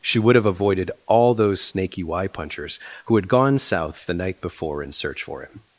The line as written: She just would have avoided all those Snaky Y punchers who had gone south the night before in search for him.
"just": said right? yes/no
no